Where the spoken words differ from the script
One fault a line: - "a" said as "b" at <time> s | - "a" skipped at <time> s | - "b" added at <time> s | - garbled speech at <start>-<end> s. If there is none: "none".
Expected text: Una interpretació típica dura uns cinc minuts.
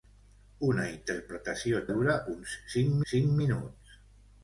- "típica" skipped at 1.8 s
- "cinc" added at 3.1 s